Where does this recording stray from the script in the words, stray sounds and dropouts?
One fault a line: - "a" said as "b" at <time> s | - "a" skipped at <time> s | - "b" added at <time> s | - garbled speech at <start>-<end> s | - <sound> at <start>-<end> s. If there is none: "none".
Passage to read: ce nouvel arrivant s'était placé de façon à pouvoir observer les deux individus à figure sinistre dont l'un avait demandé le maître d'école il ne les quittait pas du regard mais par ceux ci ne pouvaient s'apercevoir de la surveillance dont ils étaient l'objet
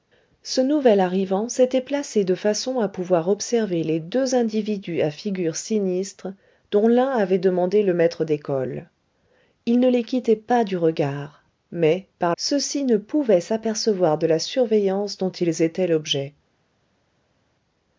none